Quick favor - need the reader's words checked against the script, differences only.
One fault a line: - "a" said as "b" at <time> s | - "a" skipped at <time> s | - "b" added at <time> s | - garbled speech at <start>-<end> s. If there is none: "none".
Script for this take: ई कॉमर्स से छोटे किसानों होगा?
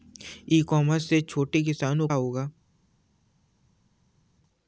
none